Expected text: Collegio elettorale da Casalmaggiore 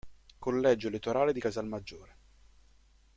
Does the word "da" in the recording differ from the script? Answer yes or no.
yes